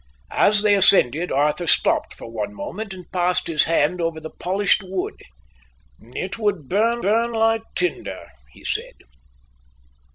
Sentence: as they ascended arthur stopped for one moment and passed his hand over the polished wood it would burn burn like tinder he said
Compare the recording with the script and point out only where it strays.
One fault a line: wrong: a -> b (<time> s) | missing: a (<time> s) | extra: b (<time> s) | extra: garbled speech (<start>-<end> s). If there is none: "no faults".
no faults